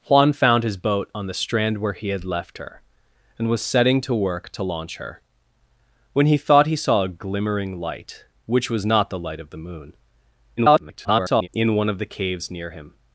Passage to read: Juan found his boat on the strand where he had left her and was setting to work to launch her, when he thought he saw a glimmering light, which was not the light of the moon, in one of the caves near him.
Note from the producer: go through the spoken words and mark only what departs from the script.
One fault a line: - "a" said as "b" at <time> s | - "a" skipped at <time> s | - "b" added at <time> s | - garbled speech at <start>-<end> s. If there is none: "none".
- garbled speech at 10.6-11.5 s